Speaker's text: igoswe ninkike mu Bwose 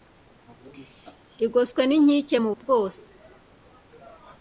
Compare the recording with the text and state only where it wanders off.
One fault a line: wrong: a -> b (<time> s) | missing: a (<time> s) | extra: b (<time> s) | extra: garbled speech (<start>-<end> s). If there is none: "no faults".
no faults